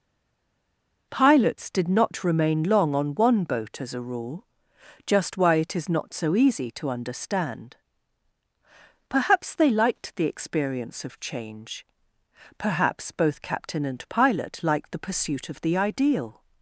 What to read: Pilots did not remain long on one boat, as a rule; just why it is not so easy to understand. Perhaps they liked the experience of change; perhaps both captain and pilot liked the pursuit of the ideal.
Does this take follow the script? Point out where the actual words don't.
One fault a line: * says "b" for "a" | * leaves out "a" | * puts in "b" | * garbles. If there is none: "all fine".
all fine